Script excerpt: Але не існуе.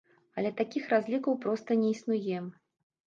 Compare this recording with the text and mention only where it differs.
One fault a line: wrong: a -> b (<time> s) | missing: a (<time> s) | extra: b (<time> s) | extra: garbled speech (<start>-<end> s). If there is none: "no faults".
extra: такіх разлікаў проста (0.6 s)